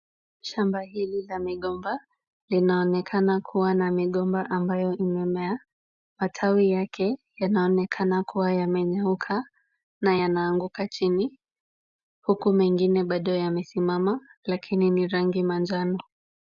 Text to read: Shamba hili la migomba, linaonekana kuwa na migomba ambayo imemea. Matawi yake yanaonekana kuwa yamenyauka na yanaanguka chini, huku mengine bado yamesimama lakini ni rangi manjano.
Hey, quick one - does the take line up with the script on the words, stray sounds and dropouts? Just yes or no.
yes